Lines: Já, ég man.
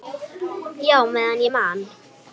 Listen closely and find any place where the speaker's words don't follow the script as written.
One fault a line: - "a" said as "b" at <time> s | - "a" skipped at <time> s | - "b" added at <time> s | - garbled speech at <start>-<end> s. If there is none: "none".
- "meðan" added at 1.2 s